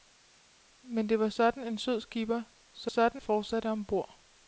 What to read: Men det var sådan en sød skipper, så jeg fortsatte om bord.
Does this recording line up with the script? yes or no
no